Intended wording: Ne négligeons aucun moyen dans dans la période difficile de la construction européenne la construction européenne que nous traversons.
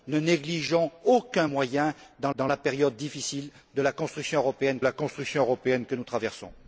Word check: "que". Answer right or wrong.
right